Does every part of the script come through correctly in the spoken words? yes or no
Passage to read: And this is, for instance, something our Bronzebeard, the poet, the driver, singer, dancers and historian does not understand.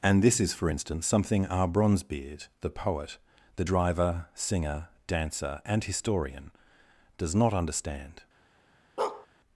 no